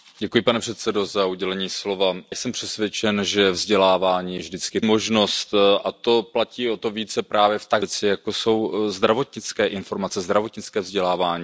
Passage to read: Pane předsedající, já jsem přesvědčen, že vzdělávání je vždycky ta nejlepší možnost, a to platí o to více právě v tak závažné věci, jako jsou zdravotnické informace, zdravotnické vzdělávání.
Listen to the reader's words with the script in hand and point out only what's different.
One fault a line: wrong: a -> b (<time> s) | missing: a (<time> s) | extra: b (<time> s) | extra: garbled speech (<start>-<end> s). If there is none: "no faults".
missing: já (1.2 s)
missing: ta nejlepší (4.8 s)
missing: závažné (7.8 s)